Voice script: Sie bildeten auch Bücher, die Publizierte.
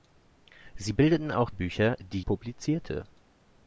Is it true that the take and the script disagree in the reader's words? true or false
false